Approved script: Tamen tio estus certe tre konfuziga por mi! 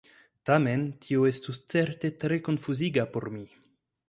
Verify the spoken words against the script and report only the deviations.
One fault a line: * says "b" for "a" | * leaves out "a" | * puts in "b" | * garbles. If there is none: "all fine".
all fine